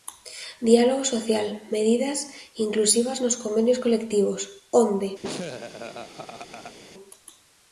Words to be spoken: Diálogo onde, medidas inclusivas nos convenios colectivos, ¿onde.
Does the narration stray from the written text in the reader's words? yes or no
yes